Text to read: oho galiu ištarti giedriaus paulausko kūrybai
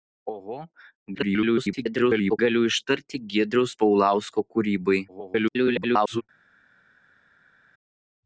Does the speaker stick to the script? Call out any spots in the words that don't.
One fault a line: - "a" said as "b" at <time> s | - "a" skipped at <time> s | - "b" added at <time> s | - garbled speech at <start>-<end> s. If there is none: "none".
- garbled speech at 1.1-2.4 s
- garbled speech at 5.1-6.2 s